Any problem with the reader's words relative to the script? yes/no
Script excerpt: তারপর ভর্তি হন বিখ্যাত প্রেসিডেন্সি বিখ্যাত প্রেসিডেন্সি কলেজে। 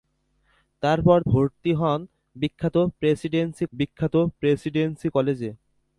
no